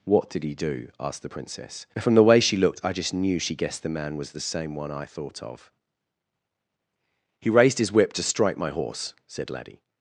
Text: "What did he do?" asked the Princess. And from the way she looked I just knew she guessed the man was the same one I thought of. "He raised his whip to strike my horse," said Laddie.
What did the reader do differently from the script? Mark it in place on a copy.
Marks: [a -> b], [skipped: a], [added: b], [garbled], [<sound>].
"What did he do?" asked the Princess. [skipped: And] from the way she looked I just knew she guessed the man was the same one I thought of. "He raised his whip to strike my horse," said Laddie.